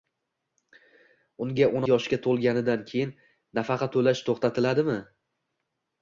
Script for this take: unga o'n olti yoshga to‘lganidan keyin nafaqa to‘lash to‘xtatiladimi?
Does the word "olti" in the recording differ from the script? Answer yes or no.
yes